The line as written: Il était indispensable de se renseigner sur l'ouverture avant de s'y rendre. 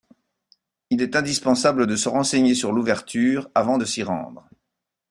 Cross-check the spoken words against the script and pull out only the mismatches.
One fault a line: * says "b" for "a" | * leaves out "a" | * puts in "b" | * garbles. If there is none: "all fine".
* says "est" for "était"